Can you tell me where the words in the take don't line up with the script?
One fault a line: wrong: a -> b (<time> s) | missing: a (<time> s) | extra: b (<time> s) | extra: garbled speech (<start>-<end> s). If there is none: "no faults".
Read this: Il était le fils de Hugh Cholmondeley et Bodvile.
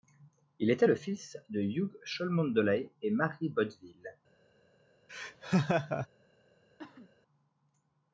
extra: Mary (3.1 s)